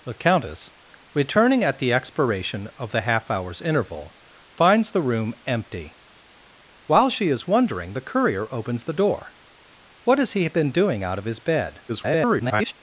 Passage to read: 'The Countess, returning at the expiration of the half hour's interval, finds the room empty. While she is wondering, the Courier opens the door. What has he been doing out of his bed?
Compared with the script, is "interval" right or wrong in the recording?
right